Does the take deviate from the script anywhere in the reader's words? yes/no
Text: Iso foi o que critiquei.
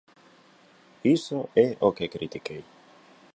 yes